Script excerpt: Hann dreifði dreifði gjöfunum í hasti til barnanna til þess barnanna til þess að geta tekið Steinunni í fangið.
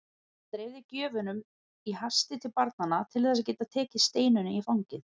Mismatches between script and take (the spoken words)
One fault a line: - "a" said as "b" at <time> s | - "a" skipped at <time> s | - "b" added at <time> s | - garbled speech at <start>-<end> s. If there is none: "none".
- "dreifði" skipped at 0.8 s
- "barnanna til þess" skipped at 3.5 s